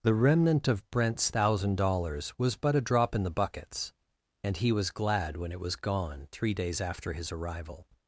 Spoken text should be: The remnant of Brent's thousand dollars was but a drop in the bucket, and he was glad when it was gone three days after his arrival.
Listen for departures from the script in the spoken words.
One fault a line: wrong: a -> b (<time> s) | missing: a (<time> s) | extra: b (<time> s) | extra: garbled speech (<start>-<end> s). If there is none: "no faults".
wrong: bucket -> buckets (3.3 s)